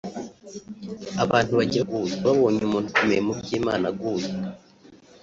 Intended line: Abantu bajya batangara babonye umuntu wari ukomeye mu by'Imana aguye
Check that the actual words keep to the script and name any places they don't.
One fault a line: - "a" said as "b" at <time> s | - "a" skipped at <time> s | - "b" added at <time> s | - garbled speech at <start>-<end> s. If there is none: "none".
- "batangara" said as "aguye" at 1.8 s
- "wari" skipped at 2.9 s